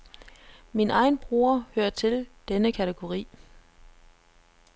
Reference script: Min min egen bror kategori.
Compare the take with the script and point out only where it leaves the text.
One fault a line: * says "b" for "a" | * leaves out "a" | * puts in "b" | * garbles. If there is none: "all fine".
* leaves out "min"
* puts in "hører til denne"